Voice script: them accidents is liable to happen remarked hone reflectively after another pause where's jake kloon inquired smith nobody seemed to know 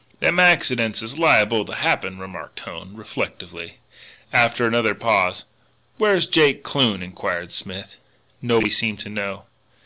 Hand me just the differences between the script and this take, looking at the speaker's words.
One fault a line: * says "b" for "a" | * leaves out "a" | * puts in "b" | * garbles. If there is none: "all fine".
all fine